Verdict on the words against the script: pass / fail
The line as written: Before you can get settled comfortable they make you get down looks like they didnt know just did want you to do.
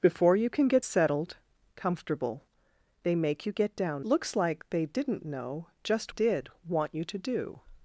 pass